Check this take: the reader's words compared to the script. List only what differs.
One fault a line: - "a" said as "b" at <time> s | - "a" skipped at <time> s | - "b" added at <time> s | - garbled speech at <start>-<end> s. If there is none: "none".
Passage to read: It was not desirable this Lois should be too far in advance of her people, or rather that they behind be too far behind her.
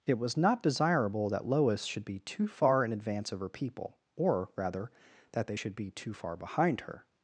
- "this" said as "that" at 1.3 s
- "behind" said as "should" at 5.5 s